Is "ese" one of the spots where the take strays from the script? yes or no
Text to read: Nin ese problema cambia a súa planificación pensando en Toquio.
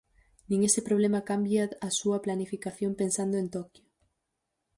no